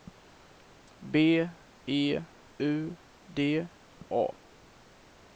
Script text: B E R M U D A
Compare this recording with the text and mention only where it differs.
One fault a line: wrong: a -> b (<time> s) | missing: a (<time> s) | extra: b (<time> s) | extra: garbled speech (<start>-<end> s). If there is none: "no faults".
missing: R M (2.2 s)